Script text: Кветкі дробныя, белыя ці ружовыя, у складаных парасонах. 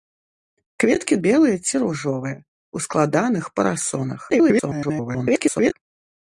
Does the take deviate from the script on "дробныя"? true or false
true